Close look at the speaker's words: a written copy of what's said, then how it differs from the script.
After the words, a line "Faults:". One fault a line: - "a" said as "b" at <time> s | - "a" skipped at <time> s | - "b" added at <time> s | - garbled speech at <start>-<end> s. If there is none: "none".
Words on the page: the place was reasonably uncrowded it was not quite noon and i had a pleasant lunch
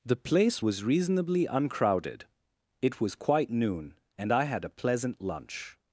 the place was reasonably uncrowded it was quite noon and i had a pleasant lunch
Faults:
- "not" skipped at 3.1 s